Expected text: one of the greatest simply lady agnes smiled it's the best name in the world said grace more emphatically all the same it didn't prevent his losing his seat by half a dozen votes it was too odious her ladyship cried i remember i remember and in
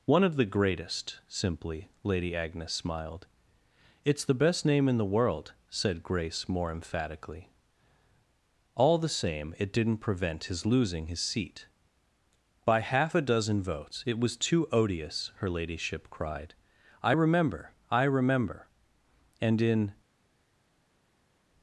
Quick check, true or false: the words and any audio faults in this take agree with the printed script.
true